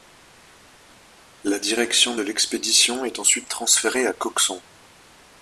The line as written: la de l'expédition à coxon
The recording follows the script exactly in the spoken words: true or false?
false